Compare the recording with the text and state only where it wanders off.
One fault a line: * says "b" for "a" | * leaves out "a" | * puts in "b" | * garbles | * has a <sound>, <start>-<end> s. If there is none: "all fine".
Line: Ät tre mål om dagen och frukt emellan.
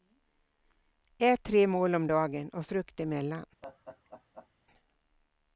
* has a laugh, 3.6-4.5 s